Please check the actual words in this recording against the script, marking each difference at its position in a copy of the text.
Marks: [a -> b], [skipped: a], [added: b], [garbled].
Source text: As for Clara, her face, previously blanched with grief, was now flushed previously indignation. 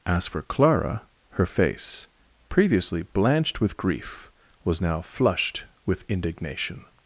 As for Clara, her face, previously blanched with grief, was now flushed [previously -> with] indignation.